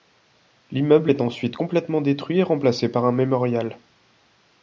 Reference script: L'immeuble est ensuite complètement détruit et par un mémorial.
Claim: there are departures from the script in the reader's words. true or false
true